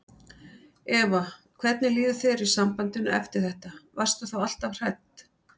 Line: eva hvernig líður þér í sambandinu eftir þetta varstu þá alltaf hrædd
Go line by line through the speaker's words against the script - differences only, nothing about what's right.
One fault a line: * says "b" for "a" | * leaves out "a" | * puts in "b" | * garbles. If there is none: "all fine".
all fine